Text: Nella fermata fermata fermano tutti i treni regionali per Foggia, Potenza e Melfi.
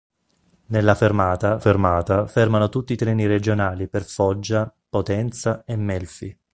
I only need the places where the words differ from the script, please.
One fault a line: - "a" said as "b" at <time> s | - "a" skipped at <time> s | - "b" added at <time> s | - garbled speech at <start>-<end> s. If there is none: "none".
none